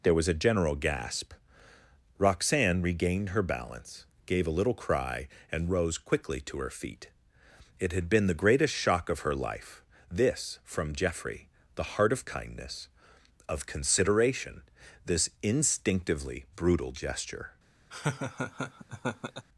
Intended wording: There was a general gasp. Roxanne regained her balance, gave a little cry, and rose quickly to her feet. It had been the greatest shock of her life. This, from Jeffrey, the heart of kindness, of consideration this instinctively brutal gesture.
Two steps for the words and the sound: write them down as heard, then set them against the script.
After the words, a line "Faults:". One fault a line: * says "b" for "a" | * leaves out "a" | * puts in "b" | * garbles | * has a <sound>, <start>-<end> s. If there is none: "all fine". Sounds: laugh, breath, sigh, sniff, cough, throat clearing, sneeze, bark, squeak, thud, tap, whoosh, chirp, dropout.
There was a general gasp. Roxanne regained her balance, gave a little cry, and rose quickly to her feet. It had been the greatest shock of her life. This, from Jeffrey, the heart of kindness, of consideration this instinctively brutal gesture.
Faults:
* has a laugh, 17.9-19.5 s